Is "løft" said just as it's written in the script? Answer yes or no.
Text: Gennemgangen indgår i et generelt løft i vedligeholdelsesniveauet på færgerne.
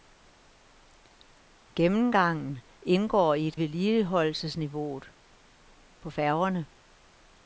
no